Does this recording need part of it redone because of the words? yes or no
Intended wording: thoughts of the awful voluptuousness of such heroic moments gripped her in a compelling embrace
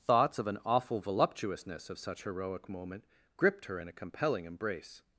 yes